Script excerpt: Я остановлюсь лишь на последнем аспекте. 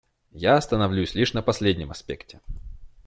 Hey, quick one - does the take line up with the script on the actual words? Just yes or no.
yes